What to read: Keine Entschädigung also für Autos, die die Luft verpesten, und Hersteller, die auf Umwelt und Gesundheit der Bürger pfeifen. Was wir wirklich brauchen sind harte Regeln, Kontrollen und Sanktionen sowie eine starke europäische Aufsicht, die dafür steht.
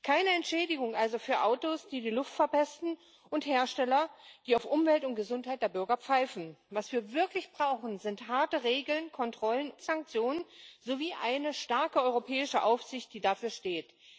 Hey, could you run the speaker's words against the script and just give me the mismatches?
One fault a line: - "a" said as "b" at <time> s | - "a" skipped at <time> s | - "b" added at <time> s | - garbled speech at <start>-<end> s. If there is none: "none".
- "und" skipped at 9.7 s